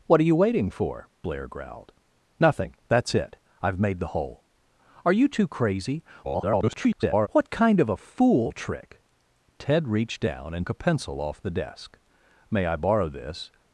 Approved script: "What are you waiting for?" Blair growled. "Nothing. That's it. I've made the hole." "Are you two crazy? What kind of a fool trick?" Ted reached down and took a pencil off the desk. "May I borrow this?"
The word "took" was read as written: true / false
false